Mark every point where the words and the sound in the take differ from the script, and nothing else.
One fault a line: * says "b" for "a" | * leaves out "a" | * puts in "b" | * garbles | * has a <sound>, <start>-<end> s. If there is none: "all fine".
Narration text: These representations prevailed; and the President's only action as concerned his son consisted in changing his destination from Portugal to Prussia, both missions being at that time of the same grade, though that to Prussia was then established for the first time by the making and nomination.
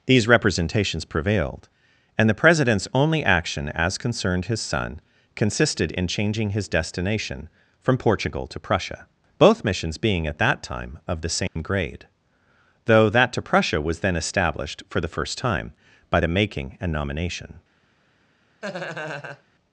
* has a dropout, 11.5-11.6 s
* has a laugh, 18.6-19.4 s